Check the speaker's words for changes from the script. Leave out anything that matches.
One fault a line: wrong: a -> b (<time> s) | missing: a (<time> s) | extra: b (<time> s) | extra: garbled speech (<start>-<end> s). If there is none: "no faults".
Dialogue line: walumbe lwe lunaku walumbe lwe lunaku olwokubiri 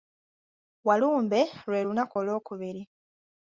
missing: walumbe lwe lunaku (2.2 s)